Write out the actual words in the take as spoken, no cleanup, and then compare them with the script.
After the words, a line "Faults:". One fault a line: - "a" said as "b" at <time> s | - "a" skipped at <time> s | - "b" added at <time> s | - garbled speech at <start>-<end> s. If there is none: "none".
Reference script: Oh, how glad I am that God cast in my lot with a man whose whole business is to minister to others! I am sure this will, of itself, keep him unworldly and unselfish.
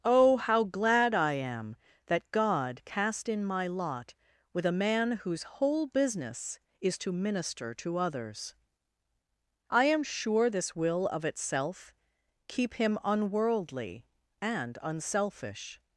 Oh, how glad I am that God cast in my lot with a man whose whole business is to minister to others! I am sure this will, of itself, keep him unworldly and unselfish.
Faults:
none